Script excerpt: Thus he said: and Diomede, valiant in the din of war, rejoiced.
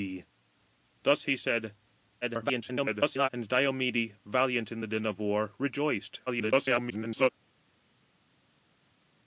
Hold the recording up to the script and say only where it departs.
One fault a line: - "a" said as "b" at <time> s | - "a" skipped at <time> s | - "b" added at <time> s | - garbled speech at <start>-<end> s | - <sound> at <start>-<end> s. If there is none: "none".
- garbled speech at 2.2-3.3 s
- garbled speech at 6.3-7.3 s